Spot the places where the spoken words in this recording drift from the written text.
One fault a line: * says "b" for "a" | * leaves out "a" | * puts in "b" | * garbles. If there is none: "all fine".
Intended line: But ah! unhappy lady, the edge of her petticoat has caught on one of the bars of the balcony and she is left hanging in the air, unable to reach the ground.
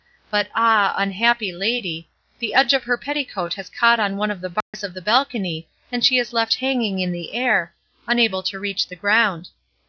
all fine